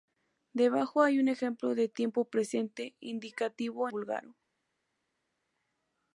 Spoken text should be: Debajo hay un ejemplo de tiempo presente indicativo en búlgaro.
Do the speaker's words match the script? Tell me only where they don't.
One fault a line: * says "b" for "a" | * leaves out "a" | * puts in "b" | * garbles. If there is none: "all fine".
* leaves out "en"